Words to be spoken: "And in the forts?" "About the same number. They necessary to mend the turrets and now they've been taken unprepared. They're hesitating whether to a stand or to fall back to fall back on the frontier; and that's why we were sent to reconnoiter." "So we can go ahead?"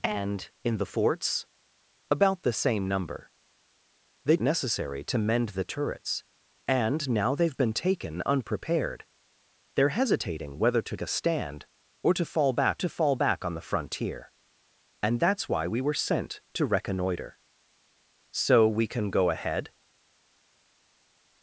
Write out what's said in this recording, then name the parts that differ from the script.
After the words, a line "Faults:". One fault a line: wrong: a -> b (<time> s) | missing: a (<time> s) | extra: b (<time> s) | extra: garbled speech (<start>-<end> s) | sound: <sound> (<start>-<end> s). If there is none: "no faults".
"And in the forts?" "About the same number. They necessary to mend the turrets and now they've been taken unprepared. They're hesitating whether to a stand or to fall back to fall back on the frontier; and that's why we were sent to reconnoiter." "So we can go ahead?"
Faults:
no faults